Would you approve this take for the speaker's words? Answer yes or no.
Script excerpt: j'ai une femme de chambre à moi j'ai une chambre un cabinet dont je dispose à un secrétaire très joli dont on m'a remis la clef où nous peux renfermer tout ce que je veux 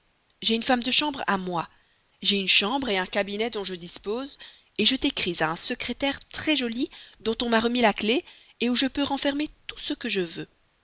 no